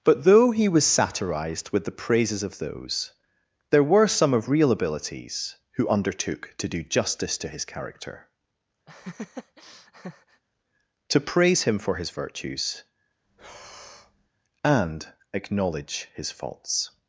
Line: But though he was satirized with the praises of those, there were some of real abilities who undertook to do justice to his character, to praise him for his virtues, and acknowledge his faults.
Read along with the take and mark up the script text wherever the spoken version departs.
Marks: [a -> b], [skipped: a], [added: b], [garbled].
But though he was satirized with the praises of those, there were some of real abilities who undertook to do justice to his character, to praise him for his virtues, and acknowledge his faults.